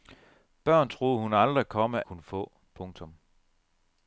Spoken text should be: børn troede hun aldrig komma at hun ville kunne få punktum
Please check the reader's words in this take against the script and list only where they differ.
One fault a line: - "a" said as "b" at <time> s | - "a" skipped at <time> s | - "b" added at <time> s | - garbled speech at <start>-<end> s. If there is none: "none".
- "at hun ville" skipped at 2.0 s